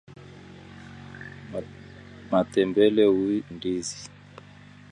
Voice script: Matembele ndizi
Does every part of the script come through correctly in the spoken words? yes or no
yes